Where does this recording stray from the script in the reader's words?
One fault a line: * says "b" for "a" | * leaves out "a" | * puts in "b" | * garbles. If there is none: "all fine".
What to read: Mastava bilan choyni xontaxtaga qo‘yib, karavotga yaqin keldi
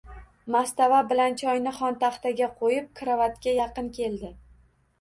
all fine